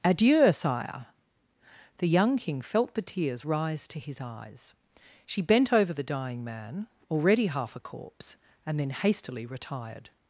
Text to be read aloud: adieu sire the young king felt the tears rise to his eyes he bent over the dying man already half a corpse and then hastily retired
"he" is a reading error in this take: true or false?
true